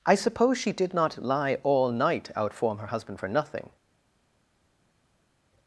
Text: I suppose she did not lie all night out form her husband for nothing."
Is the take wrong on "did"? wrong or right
right